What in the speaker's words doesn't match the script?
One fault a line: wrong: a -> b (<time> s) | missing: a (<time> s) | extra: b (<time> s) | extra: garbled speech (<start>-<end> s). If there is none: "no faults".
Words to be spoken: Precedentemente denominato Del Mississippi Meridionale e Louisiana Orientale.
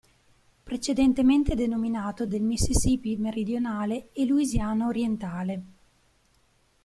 no faults